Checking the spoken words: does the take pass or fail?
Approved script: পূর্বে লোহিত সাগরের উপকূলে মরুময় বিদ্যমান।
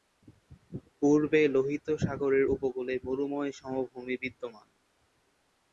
fail